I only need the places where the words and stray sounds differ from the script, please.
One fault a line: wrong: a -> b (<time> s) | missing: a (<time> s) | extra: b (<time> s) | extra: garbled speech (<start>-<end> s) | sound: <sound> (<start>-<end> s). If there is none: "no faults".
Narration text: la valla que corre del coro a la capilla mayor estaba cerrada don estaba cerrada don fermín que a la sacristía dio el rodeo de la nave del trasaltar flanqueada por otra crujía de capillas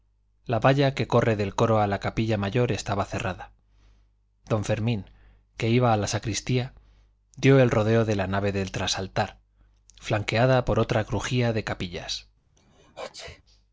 missing: estaba cerrada don (4.7 s)
extra: iba (5.7 s)
sound: sneeze (12.6-13.4 s)